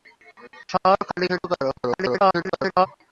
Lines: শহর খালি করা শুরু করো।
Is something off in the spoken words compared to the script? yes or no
yes